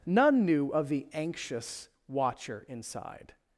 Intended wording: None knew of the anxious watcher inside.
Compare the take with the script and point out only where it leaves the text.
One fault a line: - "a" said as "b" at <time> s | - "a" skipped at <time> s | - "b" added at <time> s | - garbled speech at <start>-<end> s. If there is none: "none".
none